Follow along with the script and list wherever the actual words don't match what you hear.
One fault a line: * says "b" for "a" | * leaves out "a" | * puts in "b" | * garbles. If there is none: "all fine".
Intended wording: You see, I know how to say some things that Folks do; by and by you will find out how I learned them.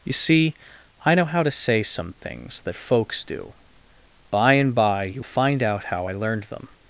* leaves out "will"